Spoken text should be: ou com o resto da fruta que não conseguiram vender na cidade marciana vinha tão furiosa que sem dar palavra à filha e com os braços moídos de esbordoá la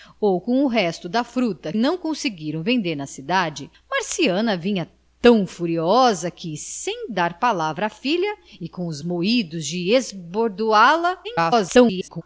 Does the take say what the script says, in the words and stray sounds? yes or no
no